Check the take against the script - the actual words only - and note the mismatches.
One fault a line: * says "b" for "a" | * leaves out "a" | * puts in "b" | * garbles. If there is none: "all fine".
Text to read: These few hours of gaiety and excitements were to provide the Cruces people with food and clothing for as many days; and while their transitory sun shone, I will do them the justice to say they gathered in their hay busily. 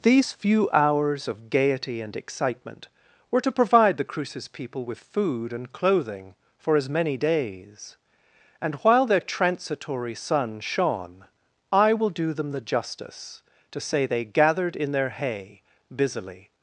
* says "excitement" for "excitements"